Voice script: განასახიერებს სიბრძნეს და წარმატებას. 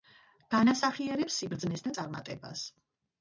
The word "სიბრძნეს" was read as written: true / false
true